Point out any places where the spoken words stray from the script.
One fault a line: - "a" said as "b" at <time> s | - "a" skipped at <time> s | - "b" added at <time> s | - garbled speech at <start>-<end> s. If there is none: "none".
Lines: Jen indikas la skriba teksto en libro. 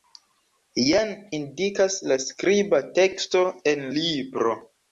none